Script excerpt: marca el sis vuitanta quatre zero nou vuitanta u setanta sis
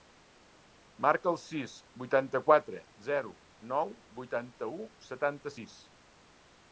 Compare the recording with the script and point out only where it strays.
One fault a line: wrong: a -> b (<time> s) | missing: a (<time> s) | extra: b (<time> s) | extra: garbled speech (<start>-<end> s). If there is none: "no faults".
no faults